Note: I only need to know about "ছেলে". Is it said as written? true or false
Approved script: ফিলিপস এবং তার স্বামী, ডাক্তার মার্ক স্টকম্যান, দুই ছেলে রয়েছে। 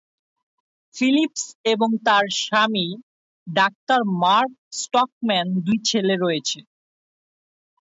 true